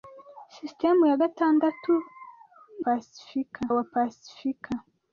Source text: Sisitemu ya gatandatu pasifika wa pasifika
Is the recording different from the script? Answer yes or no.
no